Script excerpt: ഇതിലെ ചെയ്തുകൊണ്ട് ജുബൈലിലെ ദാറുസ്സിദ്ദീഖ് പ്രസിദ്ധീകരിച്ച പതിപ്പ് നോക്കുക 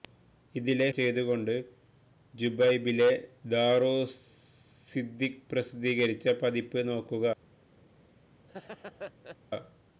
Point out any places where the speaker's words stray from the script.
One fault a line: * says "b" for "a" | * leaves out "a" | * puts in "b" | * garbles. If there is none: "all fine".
all fine